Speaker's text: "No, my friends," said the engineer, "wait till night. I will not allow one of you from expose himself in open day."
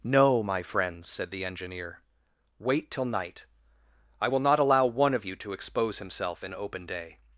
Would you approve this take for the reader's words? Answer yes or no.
no